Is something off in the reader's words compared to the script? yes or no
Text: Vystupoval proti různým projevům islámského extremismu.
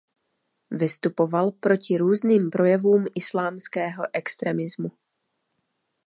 no